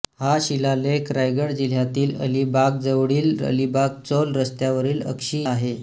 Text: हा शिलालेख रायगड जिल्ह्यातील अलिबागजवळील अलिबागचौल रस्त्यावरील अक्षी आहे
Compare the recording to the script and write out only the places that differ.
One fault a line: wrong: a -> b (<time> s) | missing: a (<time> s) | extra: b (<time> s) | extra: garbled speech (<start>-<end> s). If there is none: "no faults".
no faults